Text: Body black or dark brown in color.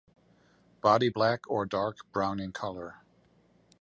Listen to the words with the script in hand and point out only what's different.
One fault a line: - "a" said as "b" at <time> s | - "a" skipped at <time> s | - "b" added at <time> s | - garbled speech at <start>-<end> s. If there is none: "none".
none